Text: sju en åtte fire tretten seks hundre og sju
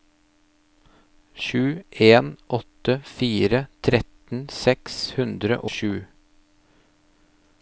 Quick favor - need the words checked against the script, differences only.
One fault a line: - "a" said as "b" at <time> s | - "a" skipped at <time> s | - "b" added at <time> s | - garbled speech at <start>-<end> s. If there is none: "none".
- "og" skipped at 5.6 s